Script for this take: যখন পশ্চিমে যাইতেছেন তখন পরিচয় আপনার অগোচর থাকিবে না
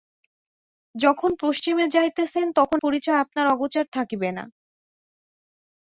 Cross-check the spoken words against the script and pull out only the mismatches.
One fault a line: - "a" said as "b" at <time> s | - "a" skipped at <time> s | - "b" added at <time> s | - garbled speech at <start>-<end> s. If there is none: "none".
none